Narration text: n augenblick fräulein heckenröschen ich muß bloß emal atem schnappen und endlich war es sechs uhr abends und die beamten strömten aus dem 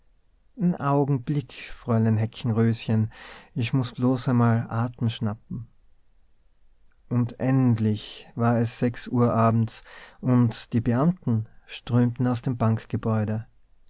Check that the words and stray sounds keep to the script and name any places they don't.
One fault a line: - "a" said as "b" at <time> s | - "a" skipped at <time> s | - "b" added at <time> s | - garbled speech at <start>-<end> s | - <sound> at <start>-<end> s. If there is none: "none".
none